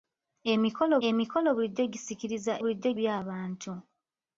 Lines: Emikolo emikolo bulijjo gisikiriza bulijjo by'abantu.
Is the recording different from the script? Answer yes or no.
no